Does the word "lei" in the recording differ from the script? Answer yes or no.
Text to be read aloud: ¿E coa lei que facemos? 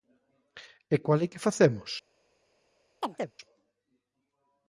no